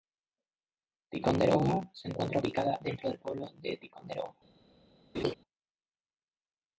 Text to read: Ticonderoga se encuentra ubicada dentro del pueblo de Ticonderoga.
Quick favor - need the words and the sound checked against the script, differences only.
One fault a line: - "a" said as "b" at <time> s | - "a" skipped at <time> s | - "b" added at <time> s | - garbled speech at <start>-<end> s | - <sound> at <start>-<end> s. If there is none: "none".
- laugh at 5.1-5.3 s